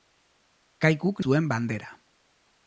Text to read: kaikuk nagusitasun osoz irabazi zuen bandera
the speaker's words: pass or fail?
fail